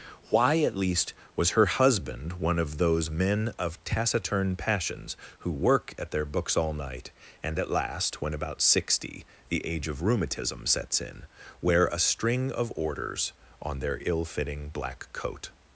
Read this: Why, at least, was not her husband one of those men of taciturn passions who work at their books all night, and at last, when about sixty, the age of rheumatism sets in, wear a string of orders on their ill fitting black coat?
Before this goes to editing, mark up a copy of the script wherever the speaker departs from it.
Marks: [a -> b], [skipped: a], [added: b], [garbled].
Why, at least, was [skipped: not] her husband one of those men of taciturn passions who work at their books all night, and at last, when about sixty, the age of rheumatism sets in, wear a string of orders on their ill fitting black coat?